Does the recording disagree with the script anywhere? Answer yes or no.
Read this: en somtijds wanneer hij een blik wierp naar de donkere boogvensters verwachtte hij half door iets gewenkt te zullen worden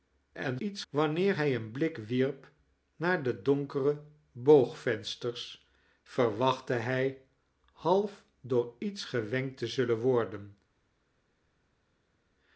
yes